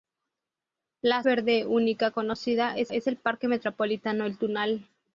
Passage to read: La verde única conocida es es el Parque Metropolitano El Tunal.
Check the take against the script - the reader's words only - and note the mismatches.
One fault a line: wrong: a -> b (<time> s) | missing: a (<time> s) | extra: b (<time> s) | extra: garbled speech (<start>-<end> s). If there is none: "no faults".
no faults